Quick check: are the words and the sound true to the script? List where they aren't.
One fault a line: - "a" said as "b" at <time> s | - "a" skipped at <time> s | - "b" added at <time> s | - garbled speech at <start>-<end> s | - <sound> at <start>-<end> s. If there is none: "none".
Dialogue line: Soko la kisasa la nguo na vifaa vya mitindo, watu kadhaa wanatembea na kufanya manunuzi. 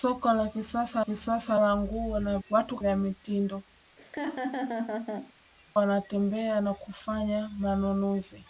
- "kisasa" added at 1.0 s
- "vifaa" said as "watu" at 2.5 s
- "watu kadhaa" skipped at 3.6 s
- laugh at 4.0-5.3 s